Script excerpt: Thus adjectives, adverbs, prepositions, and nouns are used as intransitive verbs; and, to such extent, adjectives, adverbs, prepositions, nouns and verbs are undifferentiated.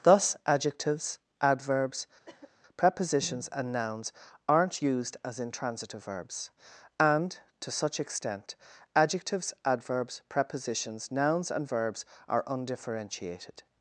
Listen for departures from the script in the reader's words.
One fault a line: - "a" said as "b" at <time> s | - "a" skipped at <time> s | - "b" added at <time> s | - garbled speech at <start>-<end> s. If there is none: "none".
- "are" said as "aren't" at 4.5 s